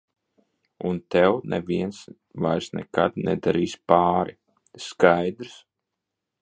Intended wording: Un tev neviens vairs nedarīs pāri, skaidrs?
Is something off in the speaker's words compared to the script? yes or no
yes